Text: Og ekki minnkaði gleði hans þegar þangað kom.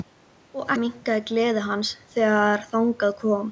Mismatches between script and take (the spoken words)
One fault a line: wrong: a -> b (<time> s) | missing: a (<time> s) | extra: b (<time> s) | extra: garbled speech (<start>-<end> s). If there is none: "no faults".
missing: ekki (0.7 s)